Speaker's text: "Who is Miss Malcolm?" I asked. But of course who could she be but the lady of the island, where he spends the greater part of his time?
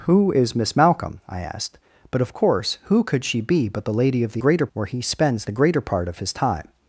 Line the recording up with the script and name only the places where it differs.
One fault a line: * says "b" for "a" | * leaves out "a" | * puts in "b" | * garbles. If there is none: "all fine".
* says "greater" for "island"